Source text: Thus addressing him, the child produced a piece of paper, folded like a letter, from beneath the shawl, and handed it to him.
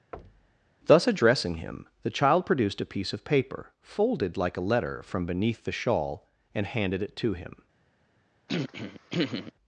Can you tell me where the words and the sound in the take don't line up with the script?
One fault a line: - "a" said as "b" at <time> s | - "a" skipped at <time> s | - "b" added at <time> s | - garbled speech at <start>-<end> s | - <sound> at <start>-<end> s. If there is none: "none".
- thud at 0.1-0.7 s
- throat clearing at 8.5-9.5 s